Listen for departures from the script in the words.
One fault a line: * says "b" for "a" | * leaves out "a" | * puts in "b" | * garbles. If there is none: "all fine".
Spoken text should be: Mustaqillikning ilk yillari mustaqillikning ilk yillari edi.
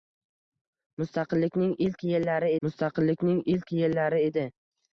all fine